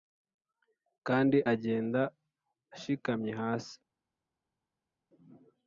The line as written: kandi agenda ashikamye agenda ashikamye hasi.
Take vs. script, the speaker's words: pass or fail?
fail